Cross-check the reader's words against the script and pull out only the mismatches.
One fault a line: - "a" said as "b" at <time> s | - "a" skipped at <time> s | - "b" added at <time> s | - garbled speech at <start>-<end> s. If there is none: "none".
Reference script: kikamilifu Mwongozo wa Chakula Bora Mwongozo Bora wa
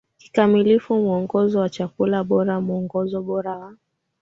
none